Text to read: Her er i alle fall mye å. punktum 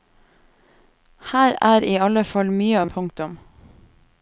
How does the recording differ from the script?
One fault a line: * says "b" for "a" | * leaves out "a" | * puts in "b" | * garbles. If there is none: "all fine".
all fine